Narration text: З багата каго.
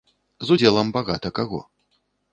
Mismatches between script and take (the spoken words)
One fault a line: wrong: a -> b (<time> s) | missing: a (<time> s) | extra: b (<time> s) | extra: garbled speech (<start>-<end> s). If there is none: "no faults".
extra: удзелам (0.5 s)